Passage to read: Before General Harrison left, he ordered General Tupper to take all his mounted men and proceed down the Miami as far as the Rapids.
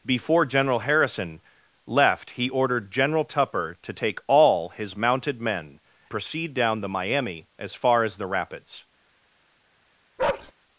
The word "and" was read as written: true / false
false